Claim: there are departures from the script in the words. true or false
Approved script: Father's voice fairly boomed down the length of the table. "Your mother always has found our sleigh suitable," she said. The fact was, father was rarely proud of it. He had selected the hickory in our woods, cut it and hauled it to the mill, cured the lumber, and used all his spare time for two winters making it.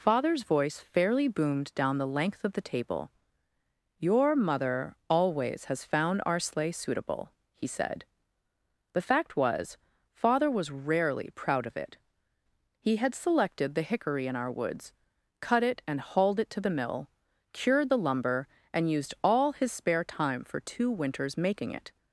true